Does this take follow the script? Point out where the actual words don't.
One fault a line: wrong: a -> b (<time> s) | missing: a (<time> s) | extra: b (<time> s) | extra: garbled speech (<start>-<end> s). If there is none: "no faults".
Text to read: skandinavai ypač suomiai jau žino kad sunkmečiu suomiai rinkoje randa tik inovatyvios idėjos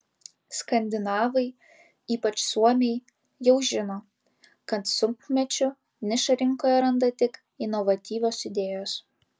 wrong: suomiai -> nišą (6.1 s)